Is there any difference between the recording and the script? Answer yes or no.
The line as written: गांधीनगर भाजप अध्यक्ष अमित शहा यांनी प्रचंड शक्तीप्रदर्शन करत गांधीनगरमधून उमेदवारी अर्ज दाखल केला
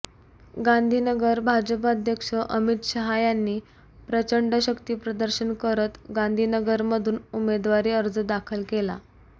no